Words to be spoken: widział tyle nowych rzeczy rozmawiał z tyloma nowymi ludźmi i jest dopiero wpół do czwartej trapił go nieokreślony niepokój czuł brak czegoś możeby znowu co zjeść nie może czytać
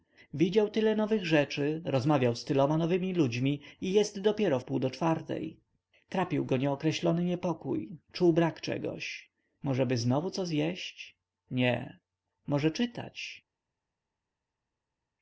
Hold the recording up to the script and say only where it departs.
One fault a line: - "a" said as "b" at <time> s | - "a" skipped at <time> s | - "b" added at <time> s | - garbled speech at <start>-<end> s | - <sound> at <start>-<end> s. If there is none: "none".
none